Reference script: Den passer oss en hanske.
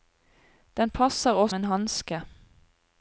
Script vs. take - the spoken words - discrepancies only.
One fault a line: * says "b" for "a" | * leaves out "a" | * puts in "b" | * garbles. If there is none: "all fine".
all fine